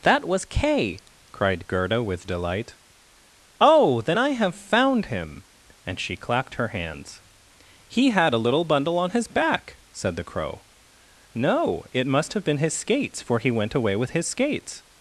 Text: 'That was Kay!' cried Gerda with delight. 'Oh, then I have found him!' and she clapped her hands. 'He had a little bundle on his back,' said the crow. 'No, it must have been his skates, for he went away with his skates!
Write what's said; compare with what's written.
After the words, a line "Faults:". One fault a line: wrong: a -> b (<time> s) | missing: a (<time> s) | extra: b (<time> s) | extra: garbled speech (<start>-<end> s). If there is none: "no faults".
'That was Kay!' cried Gerda with delight. 'Oh, then I have found him!' and she clapped her hands. 'He had a little bundle on his back,' said the crow. 'No, it must have been his skates, for he went away with his skates!
Faults:
no faults